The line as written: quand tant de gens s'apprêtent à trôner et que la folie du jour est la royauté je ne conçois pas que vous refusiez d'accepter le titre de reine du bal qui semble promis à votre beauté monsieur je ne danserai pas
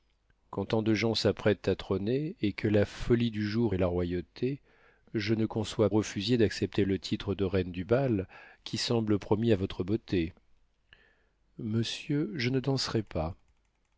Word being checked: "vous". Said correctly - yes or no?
no